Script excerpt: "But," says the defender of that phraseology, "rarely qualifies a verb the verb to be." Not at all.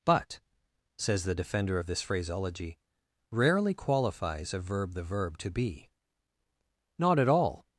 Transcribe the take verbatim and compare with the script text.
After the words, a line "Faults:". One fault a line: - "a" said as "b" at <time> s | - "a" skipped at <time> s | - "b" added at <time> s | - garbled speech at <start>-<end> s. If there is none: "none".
"But," says the defender of this phraseology, "rarely qualifies a verb the verb to be." Not at all.
Faults:
- "that" said as "this" at 1.9 s